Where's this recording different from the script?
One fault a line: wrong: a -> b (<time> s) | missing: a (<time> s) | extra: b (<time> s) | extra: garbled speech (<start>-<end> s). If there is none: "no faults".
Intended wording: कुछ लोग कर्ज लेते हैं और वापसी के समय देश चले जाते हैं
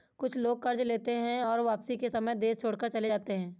extra: छोड़कर (2.6 s)